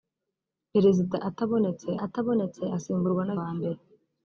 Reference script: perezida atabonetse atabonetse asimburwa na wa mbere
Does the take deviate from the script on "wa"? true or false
false